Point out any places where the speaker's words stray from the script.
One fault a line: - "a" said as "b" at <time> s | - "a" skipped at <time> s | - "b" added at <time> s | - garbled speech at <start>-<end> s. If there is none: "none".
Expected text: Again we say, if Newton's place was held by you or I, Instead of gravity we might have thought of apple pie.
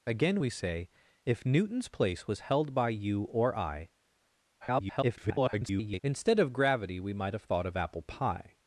- garbled speech at 4.6-6.0 s